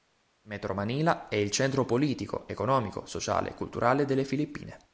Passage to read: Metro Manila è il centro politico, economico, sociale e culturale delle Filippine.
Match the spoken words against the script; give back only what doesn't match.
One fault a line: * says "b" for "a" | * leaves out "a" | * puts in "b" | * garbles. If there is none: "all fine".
all fine